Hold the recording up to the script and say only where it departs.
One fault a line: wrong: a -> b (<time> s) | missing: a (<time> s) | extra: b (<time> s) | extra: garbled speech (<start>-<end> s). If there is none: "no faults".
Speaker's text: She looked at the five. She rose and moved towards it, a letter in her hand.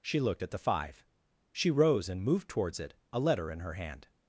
no faults